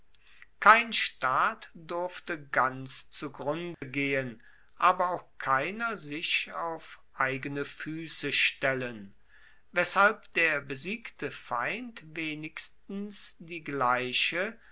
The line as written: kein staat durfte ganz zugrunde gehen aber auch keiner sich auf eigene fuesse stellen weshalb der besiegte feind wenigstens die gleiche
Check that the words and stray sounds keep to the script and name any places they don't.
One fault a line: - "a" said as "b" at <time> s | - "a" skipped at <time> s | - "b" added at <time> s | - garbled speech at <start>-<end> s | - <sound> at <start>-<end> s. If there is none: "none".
- dropout at 3.7-3.8 s